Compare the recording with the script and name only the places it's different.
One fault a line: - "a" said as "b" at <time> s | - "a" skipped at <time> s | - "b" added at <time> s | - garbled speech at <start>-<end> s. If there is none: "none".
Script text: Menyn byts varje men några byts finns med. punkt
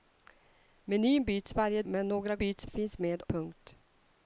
none